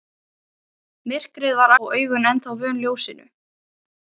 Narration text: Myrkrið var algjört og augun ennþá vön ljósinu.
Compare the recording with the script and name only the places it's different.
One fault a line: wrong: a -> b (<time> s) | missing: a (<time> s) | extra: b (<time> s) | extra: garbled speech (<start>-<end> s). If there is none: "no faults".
missing: algjört (1.7 s)